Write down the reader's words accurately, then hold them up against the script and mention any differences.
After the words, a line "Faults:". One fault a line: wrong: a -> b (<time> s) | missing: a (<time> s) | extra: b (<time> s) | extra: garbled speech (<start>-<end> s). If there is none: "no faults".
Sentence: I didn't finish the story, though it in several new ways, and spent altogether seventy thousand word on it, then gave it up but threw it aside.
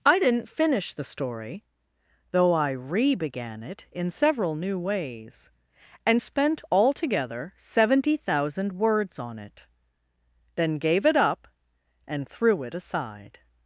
I didn't finish the story, though I re began it in several new ways, and spent altogether seventy thousand words on it, then gave it up and threw it aside.
Faults:
extra: I re began (2.5 s)
wrong: word -> words (8.7 s)
wrong: but -> and (12.1 s)